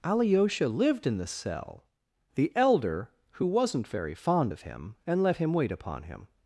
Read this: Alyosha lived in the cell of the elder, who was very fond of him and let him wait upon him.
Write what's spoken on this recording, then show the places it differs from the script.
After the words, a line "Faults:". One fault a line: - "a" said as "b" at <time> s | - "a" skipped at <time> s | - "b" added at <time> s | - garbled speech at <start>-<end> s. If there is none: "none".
Alyosha lived in the cell the elder, who wasn't very fond of him and let him wait upon him.
Faults:
- "of" skipped at 1.9 s
- "was" said as "wasn't" at 3.4 s